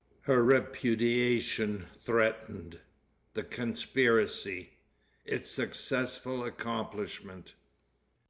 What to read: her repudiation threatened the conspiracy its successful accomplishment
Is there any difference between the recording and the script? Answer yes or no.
no